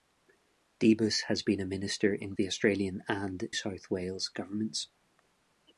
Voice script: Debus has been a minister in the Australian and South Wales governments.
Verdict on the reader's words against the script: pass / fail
pass